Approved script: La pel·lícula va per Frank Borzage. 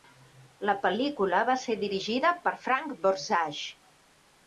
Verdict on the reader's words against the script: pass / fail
fail